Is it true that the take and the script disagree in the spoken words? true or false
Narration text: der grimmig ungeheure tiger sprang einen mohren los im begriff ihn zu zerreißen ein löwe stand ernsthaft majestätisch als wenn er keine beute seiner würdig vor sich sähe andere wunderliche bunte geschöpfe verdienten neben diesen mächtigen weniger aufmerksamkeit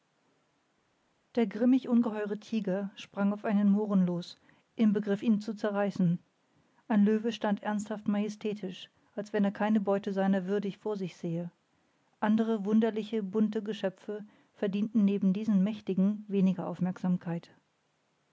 true